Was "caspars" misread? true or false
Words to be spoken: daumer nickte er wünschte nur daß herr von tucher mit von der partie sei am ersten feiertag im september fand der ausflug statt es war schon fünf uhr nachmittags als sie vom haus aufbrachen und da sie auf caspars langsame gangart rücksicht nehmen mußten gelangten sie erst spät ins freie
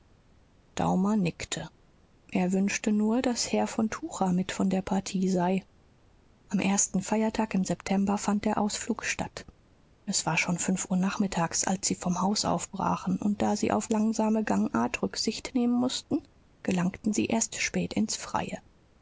true